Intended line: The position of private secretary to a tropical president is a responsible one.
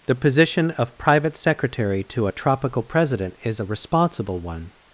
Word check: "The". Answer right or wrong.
right